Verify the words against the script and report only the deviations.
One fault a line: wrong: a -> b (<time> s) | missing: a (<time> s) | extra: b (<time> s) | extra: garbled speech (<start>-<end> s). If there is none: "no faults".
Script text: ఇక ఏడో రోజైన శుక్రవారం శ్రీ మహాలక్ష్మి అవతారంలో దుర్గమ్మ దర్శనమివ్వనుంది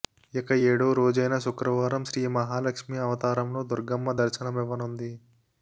no faults